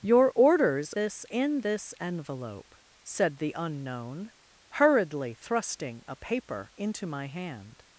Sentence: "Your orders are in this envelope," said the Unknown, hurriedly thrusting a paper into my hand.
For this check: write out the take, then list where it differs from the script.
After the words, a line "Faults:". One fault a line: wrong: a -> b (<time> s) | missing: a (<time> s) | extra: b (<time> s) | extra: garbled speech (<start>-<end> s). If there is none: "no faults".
"Your orders this in this envelope," said the Unknown, hurriedly thrusting a paper into my hand.
Faults:
wrong: are -> this (0.9 s)